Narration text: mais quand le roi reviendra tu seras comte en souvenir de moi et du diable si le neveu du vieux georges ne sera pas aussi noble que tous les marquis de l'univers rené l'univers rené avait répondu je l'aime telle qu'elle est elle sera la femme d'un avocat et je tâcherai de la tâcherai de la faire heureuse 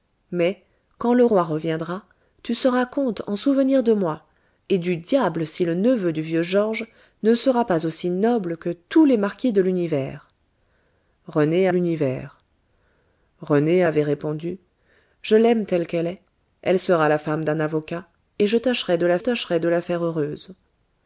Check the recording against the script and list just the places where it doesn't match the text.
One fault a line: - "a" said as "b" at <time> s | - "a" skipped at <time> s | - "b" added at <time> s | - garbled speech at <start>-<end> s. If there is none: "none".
none